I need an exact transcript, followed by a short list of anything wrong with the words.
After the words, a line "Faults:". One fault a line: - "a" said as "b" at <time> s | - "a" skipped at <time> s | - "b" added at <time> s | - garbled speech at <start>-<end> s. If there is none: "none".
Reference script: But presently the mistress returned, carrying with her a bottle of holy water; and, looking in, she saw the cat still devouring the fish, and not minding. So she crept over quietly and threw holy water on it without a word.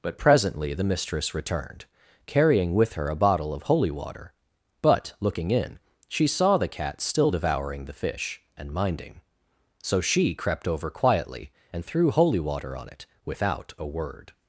But presently the mistress returned, carrying with her a bottle of holy water; but, looking in, she saw the cat still devouring the fish, and minding. So she crept over quietly and threw holy water on it without a word.
Faults:
- "and" said as "but" at 4.8 s
- "not" skipped at 8.7 s